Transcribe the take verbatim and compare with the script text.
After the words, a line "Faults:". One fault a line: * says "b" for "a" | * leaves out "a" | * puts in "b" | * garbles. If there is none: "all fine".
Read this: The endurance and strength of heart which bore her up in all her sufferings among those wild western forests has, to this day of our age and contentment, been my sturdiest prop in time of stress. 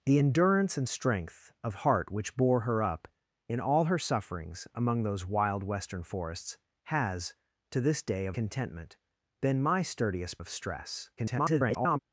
The endurance and strength of heart which bore her up in all her sufferings among those wild western forests has, to this day of contentment, been my sturdiest of stress. [garbled]
Faults:
* leaves out "our age and"
* leaves out "prop in time"
* garbles